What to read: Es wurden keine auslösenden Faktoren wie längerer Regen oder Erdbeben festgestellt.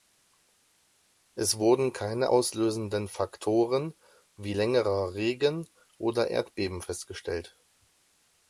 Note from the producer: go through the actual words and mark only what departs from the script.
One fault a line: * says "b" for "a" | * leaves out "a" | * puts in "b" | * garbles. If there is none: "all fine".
all fine